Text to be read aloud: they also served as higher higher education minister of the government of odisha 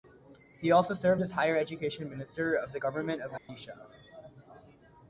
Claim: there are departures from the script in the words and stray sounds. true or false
true